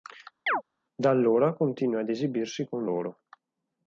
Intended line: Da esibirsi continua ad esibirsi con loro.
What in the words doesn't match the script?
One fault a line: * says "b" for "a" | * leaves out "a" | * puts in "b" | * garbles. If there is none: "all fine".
* says "allora" for "esibirsi"